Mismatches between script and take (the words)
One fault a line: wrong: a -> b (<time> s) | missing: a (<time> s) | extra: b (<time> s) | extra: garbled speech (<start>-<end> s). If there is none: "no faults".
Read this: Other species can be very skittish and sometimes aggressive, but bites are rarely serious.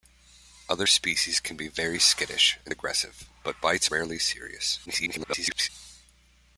missing: sometimes (2.7 s)
missing: are (3.9 s)
extra: garbled speech (4.8-5.7 s)